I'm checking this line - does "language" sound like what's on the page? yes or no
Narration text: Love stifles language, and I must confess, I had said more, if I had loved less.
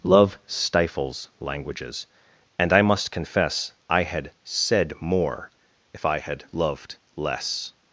no